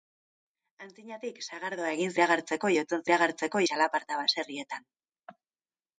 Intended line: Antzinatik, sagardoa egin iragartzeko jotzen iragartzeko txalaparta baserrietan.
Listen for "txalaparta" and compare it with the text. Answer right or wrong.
right